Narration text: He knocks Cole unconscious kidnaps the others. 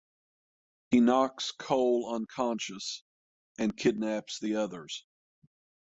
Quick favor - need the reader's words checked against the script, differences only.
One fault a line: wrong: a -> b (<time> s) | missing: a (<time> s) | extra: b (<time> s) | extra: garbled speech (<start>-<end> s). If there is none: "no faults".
extra: and (3.6 s)